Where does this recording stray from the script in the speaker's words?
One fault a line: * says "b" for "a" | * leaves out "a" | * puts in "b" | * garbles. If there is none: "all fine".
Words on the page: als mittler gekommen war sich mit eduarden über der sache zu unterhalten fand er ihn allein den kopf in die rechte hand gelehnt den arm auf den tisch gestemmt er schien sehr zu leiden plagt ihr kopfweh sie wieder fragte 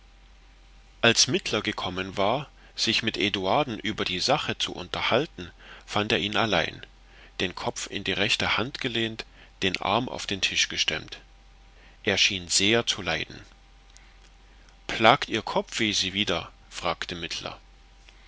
* says "die" for "der"